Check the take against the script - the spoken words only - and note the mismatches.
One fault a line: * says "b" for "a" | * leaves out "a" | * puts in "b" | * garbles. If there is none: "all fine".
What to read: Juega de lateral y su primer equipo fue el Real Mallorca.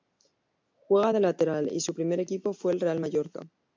all fine